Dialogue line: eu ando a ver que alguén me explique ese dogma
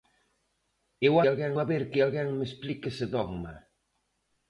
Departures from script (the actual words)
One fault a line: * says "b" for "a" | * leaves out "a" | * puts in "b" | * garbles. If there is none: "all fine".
* says "alguén" for "ando"